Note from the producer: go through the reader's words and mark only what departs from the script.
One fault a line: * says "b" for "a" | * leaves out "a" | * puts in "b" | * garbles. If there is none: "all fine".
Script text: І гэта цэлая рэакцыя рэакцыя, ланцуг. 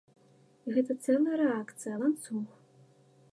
* leaves out "рэакцыя"